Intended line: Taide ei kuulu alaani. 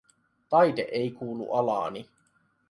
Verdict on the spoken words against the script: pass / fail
pass